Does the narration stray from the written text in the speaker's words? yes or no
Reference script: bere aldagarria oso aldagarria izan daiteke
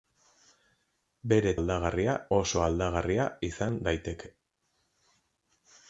no